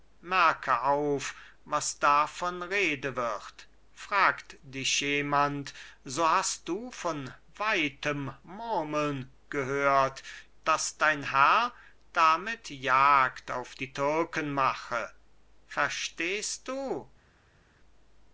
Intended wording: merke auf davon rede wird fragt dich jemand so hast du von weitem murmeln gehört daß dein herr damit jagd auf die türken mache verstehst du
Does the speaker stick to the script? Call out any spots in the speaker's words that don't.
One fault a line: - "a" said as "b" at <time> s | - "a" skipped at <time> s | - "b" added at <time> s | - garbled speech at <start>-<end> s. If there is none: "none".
- "was" added at 1.7 s